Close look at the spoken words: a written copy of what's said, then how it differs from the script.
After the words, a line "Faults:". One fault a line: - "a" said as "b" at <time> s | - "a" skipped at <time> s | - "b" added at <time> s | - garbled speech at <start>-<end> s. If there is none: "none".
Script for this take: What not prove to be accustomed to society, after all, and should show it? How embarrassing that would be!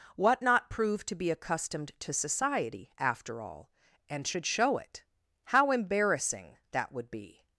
What not prove to be accustomed to society, after all, and should show it? How embarrassing that would be!
Faults:
none